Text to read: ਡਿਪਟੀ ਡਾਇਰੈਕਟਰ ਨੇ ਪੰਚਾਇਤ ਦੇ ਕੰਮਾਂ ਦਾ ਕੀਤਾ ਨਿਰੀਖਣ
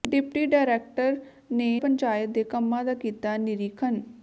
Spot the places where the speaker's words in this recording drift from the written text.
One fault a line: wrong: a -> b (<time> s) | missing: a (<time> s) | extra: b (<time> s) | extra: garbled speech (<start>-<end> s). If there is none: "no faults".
no faults